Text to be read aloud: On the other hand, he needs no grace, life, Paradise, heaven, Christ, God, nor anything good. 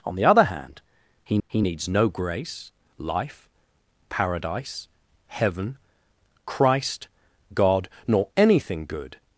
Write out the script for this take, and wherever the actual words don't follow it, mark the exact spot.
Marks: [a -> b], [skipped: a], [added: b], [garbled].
On the other hand, he [added: he] needs no grace, life, Paradise, heaven, Christ, God, nor anything good.